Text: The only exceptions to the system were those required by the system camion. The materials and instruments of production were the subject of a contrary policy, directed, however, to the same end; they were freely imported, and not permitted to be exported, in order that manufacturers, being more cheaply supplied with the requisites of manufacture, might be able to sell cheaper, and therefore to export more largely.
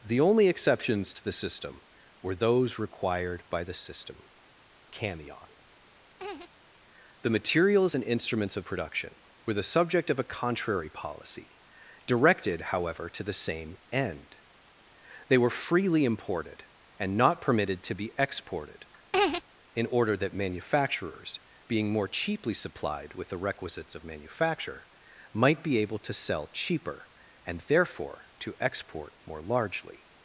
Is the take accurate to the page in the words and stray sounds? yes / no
no